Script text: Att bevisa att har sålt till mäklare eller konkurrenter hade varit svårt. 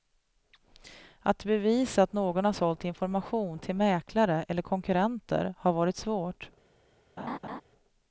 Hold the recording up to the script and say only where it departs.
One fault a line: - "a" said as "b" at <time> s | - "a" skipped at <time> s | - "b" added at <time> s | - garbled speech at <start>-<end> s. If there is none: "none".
- "någon" added at 2.1 s
- "information" added at 2.9 s
- "hade" said as "har" at 5.6 s